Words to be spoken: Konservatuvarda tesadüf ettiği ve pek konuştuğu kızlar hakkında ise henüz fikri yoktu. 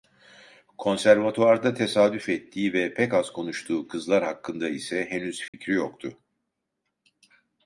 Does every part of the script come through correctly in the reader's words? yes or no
no